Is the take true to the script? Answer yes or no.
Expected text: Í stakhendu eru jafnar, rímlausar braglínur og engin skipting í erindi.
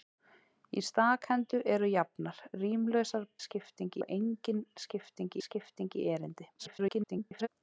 no